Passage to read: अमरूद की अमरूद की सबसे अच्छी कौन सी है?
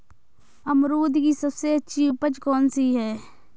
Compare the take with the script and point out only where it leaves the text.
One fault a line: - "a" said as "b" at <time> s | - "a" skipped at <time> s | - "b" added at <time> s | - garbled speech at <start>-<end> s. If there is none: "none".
- "अमरूद की" skipped at 1.3 s
- "उपज" added at 2.1 s